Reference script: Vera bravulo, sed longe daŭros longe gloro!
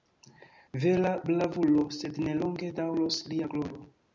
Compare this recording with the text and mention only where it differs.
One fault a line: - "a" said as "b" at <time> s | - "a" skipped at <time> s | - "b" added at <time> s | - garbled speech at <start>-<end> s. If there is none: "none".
- "ne" added at 2.3 s
- "longe" said as "lia" at 3.3 s